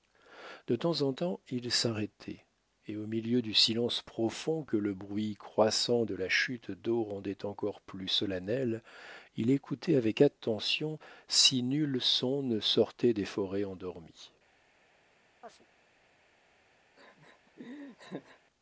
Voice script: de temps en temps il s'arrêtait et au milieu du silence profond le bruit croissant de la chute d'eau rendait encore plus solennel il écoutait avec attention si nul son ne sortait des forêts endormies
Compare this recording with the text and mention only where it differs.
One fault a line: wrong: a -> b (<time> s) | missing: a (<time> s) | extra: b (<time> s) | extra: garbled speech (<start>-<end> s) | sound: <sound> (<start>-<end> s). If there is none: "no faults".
extra: que (4.6 s)
sound: chirp (15.4-15.7 s)
sound: laugh (17.0-18.4 s)